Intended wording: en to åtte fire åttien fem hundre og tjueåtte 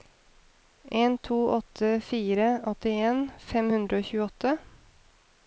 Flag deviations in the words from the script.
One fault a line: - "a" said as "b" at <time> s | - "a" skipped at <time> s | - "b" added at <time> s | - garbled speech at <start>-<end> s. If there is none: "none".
none